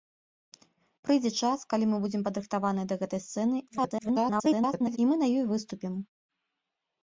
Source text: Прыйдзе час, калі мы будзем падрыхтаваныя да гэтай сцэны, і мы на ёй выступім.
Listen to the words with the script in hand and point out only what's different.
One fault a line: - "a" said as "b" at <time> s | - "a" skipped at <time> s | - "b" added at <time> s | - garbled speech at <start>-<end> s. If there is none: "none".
- garbled speech at 3.7-5.0 s